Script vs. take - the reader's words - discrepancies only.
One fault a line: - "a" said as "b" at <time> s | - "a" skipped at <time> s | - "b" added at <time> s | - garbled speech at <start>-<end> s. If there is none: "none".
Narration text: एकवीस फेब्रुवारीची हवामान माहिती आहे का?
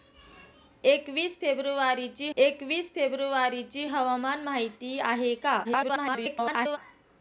- "एकवीस फेब्रुवारीची" added at 2.4 s
- garbled speech at 5.6-6.8 s